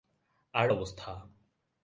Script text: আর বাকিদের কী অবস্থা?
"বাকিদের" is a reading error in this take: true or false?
true